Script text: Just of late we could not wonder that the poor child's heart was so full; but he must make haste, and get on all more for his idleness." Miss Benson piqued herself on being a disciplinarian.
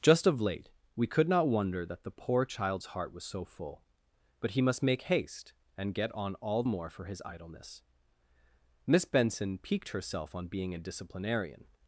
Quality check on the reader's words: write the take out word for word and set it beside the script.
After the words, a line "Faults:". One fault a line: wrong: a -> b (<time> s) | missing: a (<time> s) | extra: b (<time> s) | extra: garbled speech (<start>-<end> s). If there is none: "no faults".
Just of late we could not wonder that the poor child's heart was so full; but he must make haste, and get on all more for his idleness." Miss Benson piqued herself on being a disciplinarian.
Faults:
no faults